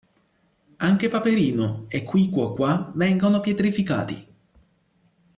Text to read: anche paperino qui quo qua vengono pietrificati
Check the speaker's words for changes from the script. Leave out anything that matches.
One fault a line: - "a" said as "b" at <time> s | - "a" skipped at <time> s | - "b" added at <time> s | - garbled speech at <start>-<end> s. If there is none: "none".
- "e" added at 1.9 s